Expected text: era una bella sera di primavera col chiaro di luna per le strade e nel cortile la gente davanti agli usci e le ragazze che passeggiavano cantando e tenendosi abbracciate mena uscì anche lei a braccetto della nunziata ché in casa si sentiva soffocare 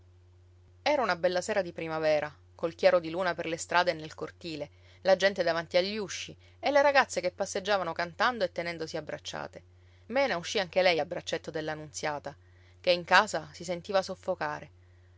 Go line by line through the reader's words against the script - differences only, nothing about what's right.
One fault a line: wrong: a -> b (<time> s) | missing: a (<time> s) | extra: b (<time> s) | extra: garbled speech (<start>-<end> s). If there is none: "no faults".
no faults